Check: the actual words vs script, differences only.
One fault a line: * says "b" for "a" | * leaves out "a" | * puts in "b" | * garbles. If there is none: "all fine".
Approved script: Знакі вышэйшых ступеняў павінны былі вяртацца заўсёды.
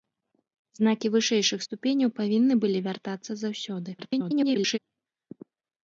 * garbles